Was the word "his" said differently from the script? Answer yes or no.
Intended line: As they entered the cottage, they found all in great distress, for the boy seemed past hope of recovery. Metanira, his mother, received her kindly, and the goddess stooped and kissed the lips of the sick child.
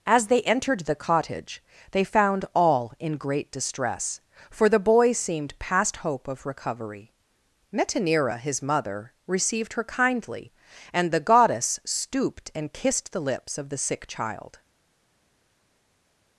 no